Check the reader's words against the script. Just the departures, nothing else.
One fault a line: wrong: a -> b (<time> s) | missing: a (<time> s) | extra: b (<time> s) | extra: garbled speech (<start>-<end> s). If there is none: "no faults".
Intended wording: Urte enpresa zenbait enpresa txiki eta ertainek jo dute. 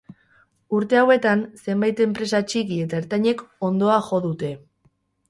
wrong: enpresa -> hauetan (1.0 s)
extra: hondoa (3.7 s)